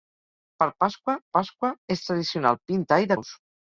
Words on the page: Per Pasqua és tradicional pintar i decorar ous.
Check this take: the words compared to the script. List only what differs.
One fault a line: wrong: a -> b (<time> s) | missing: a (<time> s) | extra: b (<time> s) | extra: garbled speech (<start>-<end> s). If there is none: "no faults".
extra: Pasqua (1.4 s)
missing: decorar (3.1 s)